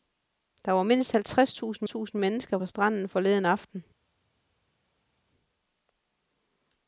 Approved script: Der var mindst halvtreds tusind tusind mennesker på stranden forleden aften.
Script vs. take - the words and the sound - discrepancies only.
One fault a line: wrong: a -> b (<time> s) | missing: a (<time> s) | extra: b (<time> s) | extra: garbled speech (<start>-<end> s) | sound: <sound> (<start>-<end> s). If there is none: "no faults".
no faults